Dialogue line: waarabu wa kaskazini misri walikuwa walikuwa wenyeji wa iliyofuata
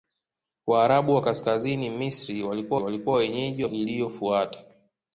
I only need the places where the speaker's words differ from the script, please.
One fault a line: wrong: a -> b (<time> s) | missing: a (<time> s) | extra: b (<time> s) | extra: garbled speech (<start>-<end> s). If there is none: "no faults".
no faults